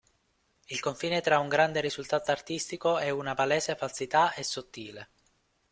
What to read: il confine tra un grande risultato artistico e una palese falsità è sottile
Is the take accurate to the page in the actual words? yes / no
yes